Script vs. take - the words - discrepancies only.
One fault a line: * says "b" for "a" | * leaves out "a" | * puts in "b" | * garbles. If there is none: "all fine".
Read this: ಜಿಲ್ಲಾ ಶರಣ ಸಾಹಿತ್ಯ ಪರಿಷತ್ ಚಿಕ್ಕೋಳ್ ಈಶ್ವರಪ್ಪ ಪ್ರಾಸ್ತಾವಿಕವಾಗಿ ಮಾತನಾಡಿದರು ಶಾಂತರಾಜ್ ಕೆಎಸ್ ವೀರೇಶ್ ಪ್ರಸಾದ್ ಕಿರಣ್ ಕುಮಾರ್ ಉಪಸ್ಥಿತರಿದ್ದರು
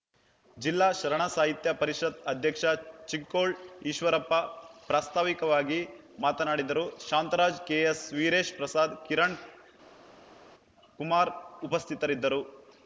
* puts in "ಅಧ್ಯಕ್ಷ"